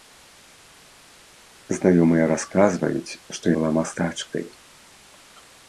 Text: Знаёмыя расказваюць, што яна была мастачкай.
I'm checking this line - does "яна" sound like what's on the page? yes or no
no